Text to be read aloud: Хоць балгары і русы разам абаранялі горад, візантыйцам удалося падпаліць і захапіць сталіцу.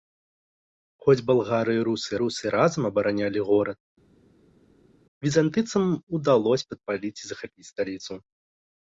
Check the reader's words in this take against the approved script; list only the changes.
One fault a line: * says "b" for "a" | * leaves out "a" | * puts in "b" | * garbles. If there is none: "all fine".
* puts in "русы"